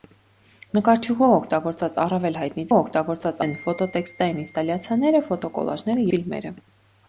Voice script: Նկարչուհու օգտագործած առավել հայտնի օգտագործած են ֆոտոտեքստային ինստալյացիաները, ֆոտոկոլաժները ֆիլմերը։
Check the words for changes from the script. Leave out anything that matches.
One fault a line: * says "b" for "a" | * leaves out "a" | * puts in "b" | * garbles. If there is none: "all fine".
all fine